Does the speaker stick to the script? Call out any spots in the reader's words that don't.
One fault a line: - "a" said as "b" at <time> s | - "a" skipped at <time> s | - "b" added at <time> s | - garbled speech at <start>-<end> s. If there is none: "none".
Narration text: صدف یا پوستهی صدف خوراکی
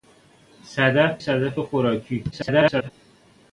- "یا پوستهی" skipped at 1.2 s
- garbled speech at 2.3-2.9 s